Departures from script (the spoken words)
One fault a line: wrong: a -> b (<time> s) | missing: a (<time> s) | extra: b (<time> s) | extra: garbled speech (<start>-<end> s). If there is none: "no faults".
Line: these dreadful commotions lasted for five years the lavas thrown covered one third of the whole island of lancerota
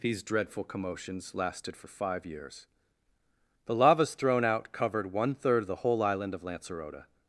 extra: out (4.5 s)